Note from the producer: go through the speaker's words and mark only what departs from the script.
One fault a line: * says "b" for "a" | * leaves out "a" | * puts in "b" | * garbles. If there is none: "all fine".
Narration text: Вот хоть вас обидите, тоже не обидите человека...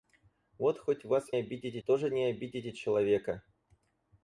all fine